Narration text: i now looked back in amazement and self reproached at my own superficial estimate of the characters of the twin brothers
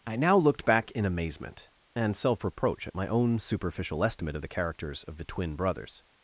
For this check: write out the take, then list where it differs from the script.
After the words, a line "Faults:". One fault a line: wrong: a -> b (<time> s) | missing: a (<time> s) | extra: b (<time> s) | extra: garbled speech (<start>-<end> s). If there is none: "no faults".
i now looked back in amazement and self reproach at my own superficial estimate of the characters of the twin brothers
Faults:
wrong: reproached -> reproach (2.4 s)